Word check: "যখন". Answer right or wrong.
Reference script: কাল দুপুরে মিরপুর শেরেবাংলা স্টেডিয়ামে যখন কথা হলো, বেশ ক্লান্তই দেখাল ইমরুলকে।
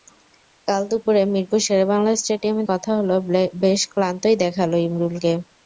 wrong